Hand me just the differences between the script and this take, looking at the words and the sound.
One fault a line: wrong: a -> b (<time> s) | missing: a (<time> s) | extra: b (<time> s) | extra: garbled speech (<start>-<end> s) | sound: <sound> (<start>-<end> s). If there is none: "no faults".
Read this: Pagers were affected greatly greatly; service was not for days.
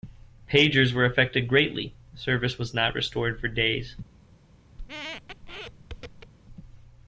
missing: greatly (1.9 s)
extra: restored (3.0 s)
sound: squeak (4.8-6.3 s)